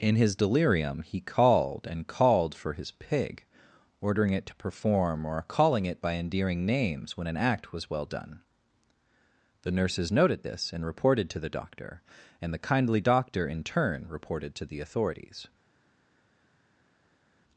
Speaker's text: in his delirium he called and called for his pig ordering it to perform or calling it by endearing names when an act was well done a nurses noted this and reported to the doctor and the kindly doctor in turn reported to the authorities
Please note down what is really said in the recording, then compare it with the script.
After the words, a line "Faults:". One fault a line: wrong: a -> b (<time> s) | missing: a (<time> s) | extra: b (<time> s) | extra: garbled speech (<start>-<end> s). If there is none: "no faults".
in his delirium he called and called for his pig ordering it to perform or calling it by endearing names when an act was well done the nurses noted this and reported to the doctor and the kindly doctor in turn reported to the authorities
Faults:
wrong: a -> the (9.6 s)